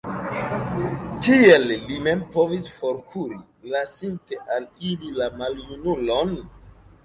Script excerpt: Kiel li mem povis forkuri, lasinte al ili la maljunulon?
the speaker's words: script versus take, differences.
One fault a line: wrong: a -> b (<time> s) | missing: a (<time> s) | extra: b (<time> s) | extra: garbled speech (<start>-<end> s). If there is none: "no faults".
no faults